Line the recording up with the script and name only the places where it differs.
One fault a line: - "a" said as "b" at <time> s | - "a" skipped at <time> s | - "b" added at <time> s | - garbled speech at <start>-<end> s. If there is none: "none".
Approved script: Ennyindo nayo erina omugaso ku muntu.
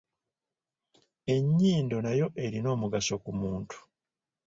none